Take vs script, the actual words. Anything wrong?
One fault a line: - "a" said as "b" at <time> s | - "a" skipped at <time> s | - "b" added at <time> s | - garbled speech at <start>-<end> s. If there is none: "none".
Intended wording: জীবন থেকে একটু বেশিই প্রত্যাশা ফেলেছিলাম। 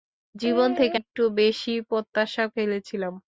none